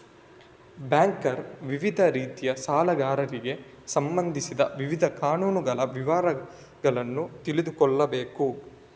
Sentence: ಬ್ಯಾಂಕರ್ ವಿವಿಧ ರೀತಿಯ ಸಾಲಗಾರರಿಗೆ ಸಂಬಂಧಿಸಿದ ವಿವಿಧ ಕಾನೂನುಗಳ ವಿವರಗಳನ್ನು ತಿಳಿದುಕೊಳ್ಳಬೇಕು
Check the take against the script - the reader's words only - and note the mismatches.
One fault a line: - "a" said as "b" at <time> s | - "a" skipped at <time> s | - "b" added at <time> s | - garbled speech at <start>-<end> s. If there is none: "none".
none